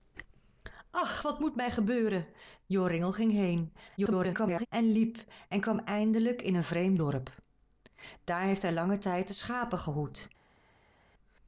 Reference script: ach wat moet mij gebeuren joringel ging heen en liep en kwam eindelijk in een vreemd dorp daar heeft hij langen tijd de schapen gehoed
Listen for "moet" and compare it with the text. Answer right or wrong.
right